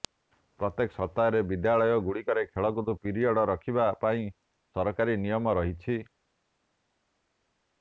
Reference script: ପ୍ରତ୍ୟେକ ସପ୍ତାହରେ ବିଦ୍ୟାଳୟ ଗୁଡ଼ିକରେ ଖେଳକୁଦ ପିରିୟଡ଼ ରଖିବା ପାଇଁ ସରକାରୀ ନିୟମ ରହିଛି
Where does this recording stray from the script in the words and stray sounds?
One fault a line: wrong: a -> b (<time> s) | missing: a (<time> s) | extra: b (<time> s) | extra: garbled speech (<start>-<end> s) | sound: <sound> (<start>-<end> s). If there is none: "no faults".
no faults